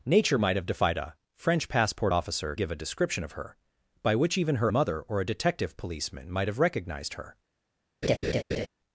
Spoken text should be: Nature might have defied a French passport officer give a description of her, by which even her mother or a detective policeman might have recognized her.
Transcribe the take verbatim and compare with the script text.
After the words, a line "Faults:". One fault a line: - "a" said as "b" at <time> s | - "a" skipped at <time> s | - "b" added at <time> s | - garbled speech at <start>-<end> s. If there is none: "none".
Nature might have defied a French passport officer give a description of her, by which even her mother or a detective policeman might have recognized her.
Faults:
none